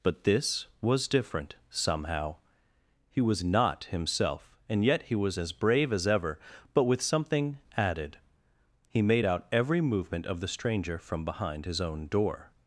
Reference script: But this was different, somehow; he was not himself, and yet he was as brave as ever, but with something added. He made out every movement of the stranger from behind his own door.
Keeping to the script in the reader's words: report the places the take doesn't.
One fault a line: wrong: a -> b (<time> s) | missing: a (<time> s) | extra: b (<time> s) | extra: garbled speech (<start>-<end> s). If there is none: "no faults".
no faults